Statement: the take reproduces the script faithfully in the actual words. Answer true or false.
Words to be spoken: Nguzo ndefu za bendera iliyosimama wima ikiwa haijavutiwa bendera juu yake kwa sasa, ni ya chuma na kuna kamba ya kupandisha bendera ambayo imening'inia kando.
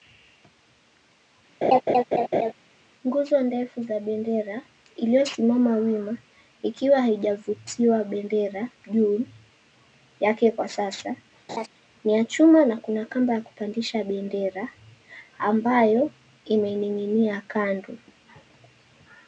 true